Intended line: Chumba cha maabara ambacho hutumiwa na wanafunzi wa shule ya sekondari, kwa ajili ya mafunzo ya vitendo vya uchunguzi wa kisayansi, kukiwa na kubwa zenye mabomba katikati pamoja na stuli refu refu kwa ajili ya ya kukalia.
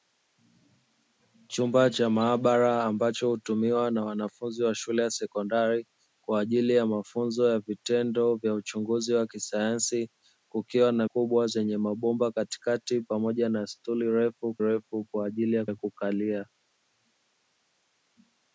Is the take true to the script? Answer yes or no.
yes